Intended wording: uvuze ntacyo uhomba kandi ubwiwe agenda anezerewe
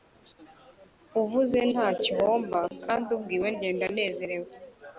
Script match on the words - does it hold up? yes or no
yes